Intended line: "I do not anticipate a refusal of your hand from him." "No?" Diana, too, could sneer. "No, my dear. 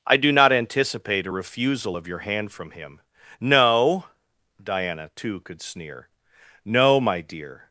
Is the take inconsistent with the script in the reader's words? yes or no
no